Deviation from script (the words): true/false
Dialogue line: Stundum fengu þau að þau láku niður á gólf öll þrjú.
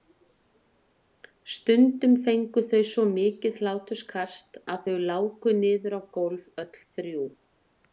true